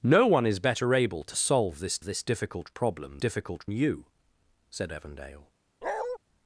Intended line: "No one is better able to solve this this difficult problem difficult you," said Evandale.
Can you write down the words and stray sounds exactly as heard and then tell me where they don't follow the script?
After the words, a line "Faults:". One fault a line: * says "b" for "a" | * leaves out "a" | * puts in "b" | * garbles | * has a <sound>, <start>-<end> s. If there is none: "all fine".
"No one is better able to solve this this difficult problem difficult you," said Evandale.
Faults:
* has a bark, 5.8-6.2 s